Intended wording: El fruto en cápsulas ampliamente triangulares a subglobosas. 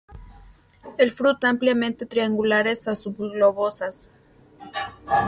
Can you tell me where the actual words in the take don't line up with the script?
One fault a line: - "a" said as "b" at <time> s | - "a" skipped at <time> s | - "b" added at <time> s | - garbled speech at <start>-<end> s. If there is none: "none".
- "en cápsulas" skipped at 1.4 s